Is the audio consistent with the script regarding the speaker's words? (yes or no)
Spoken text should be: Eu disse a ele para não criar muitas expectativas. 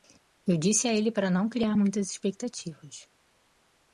yes